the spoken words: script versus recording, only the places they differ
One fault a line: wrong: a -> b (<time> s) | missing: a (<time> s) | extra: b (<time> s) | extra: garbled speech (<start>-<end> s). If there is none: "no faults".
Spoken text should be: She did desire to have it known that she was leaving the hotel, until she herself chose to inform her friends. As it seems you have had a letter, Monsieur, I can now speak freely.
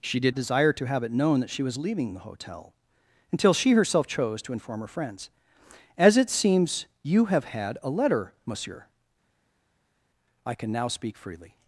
no faults